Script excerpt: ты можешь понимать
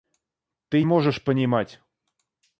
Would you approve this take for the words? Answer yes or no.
yes